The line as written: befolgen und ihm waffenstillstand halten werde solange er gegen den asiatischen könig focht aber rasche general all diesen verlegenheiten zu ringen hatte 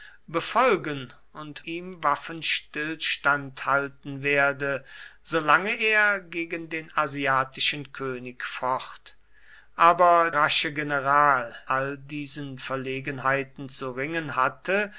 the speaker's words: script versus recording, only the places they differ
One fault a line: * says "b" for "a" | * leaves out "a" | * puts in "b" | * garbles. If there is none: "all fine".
all fine